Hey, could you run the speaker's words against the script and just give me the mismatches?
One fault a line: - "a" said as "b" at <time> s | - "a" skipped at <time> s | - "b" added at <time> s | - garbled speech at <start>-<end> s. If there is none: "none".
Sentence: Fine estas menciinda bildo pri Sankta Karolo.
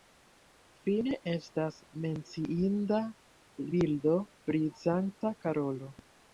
none